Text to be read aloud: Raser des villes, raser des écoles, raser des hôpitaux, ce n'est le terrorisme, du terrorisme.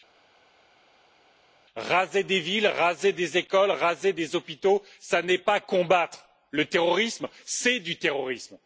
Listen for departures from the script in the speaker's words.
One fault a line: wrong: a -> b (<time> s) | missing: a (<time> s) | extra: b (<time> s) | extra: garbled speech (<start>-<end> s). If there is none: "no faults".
extra: pas combattre (5.4 s)
extra: c'est (7.4 s)